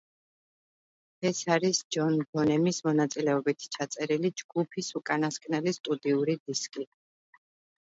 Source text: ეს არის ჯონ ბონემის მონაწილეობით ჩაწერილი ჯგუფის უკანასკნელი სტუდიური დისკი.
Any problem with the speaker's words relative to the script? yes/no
no